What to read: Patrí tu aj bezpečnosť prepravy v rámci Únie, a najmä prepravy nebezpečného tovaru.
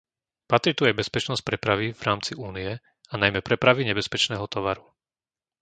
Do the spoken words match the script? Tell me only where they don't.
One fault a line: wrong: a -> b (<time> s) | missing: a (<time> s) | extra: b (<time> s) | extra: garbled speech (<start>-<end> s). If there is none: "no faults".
no faults